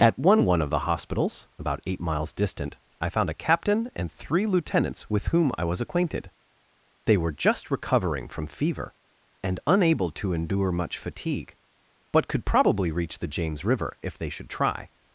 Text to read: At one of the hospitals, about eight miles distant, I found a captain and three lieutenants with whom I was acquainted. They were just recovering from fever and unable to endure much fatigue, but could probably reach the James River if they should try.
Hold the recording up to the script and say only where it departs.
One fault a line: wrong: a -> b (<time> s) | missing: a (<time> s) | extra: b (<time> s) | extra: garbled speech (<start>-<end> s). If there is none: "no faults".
extra: one (0.5 s)